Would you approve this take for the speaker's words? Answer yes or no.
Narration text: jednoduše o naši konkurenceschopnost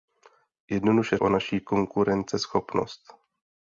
yes